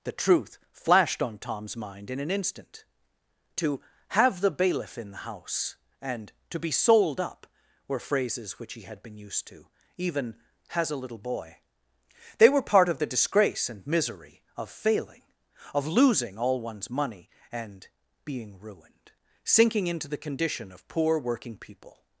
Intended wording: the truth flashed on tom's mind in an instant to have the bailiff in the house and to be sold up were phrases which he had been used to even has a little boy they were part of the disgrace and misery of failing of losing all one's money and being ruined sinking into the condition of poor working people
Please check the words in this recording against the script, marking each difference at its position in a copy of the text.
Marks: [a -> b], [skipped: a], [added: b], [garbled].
the truth flashed on tom's mind in an instant to have the bailiff in the house and to be sold up were phrases which he had been used to even has a little boy they were part of the disgrace and misery of failing of losing all one's money and being ruined sinking into the condition of poor working people